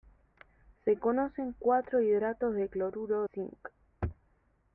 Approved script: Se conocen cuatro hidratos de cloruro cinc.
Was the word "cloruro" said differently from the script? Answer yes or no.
no